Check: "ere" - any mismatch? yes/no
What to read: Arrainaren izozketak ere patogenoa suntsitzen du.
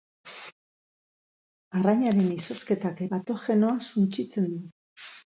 yes